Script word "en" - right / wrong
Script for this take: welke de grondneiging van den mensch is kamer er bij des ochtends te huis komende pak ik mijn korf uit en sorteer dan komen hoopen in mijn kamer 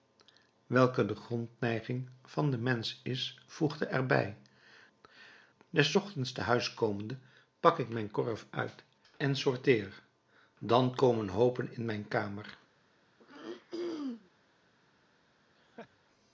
right